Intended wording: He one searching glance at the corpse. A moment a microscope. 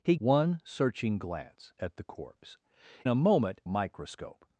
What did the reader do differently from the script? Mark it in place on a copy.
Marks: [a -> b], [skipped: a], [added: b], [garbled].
He one searching glance at the corpse. A moment a microscope.